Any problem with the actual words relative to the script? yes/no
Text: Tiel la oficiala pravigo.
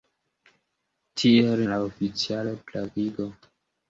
no